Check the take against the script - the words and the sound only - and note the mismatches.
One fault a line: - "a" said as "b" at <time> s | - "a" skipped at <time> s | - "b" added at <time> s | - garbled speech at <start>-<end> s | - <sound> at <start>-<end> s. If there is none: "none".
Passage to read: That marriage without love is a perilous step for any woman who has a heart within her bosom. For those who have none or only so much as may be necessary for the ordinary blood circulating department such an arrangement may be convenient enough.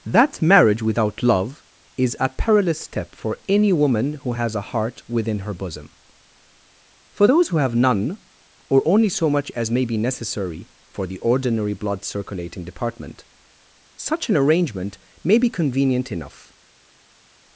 none